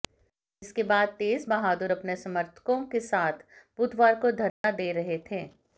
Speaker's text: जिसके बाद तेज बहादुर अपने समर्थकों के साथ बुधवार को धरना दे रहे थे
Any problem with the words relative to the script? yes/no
no